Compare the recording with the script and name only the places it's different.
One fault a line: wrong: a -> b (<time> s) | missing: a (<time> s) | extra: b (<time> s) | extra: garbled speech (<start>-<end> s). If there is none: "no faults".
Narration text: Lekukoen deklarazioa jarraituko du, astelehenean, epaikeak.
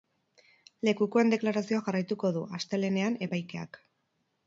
no faults